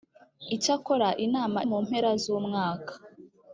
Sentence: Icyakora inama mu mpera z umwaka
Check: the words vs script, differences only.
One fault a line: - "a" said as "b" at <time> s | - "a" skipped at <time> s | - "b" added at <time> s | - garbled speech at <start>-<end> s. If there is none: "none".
none